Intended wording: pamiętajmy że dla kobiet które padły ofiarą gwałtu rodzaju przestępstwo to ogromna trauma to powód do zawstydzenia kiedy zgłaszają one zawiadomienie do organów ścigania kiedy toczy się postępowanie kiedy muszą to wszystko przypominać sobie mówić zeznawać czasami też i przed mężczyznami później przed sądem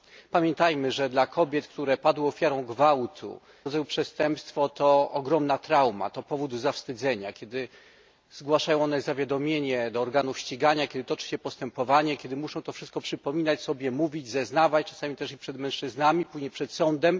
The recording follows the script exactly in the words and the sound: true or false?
true